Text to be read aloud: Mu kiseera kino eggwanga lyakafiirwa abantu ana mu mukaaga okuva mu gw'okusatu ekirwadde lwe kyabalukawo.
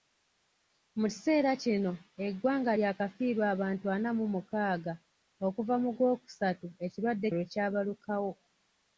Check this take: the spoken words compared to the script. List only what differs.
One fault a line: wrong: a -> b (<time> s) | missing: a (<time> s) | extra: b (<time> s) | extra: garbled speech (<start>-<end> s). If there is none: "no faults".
no faults